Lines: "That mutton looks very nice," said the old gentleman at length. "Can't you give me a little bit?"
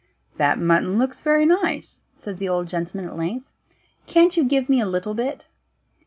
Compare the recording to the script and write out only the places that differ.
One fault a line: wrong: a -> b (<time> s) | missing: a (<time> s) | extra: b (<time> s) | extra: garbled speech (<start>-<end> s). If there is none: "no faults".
no faults